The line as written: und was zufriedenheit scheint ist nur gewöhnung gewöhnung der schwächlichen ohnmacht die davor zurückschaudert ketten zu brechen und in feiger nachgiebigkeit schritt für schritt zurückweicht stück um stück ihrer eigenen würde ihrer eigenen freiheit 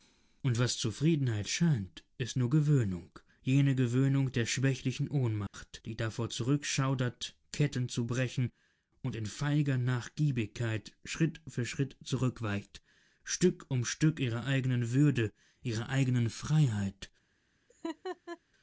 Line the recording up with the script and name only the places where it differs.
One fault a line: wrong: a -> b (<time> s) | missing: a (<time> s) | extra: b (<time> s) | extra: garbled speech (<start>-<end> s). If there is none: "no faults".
extra: jene (3.4 s)